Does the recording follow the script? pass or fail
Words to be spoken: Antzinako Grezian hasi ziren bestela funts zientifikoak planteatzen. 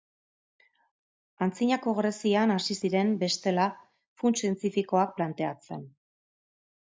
pass